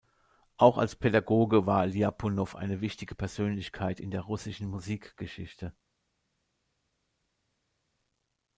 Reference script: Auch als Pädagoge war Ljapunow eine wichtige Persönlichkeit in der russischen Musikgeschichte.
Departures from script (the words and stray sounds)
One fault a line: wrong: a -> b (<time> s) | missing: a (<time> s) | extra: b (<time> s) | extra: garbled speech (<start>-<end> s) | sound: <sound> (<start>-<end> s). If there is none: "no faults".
no faults